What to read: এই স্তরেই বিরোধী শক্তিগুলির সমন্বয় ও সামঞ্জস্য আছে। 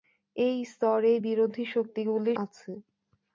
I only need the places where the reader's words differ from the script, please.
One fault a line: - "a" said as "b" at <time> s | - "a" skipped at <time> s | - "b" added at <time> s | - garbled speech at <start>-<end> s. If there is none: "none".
- "সমন্বয় ও সামঞ্জস্য" skipped at 2.4 s